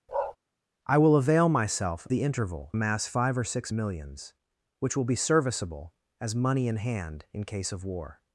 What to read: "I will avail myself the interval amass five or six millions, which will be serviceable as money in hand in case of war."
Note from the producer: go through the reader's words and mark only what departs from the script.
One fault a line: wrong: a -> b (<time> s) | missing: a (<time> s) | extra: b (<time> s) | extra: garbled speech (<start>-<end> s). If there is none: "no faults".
no faults